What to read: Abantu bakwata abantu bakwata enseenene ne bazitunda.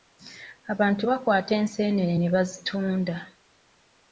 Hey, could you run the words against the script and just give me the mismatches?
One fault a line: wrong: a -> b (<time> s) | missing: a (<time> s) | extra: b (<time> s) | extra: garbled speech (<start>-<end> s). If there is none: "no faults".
missing: abantu bakwata (1.5 s)